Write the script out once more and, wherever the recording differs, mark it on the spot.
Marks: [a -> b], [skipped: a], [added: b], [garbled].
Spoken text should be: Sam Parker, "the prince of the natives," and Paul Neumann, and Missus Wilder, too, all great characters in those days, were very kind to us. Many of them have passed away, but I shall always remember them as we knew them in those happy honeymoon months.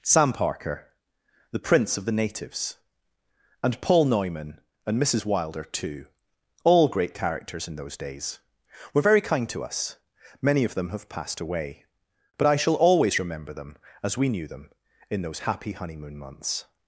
Sam Parker, "the prince of the natives," and Paul Neumann, and Missus Wilder, too, all great characters in those days, were very kind to us. Many of them have passed away, but I shall always remember them as we knew them in those happy honeymoon months.